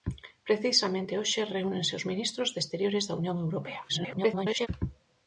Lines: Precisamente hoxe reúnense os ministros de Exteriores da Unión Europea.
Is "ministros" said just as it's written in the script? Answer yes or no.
yes